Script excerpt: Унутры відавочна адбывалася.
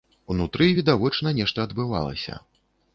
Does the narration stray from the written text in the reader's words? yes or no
yes